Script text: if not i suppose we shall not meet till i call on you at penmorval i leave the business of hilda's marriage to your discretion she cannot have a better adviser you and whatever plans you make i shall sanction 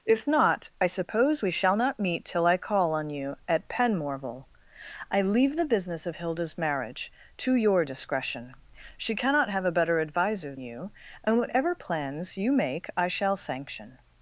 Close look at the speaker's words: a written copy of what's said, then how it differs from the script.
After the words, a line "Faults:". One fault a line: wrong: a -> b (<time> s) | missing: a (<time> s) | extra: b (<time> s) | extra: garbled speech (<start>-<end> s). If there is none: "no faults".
if not i suppose we shall not meet till i call on you at penmorval i leave the business of hilda's marriage to your discretion she cannot have a better adviser you and whatever plans you make i shall sanction
Faults:
no faults